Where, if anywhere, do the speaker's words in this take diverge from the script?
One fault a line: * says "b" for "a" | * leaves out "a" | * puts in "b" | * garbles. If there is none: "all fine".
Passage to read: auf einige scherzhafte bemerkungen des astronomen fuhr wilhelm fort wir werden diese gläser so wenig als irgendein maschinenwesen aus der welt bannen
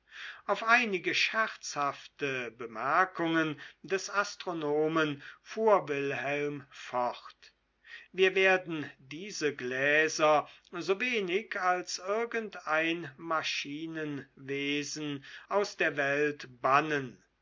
all fine